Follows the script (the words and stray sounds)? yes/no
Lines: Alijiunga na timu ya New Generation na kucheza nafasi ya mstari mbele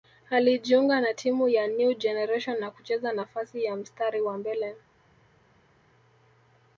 no